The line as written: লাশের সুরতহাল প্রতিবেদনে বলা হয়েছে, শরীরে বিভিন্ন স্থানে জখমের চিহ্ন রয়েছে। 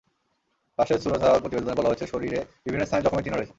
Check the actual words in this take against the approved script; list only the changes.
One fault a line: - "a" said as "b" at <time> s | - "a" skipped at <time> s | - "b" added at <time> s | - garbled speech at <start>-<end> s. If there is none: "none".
none